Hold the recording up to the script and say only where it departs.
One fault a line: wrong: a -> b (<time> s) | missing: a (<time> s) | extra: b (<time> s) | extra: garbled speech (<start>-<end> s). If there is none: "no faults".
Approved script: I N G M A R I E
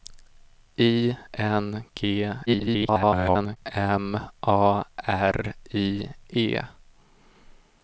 extra: garbled speech (2.5-3.6 s)